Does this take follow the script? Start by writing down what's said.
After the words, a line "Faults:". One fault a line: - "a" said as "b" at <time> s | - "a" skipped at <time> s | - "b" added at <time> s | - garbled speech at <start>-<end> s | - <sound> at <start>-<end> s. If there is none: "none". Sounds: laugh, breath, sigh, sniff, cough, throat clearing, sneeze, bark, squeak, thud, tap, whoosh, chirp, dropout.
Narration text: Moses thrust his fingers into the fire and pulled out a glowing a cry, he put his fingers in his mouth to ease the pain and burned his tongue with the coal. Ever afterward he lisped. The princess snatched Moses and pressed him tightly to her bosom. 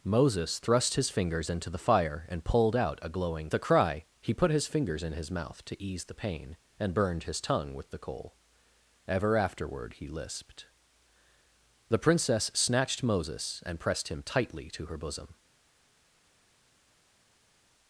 Moses thrust his fingers into the fire and pulled out a glowing a cry, he put his fingers in his mouth to ease the pain and burned his tongue with the coal. Ever afterward he lisped. The princess snatched Moses and pressed him tightly to her bosom.
Faults:
none